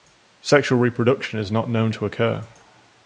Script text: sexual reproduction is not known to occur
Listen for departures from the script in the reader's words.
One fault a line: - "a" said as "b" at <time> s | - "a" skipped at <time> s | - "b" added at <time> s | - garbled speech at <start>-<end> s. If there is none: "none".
none